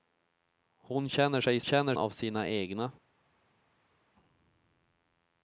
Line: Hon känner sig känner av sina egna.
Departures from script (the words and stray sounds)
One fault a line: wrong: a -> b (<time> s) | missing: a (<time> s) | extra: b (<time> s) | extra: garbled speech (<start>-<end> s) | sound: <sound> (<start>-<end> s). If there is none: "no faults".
no faults